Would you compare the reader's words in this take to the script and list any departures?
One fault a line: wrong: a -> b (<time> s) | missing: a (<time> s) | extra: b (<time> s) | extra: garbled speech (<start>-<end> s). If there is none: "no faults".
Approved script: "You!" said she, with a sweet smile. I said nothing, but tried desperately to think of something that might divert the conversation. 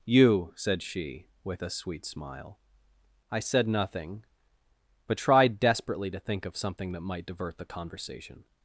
no faults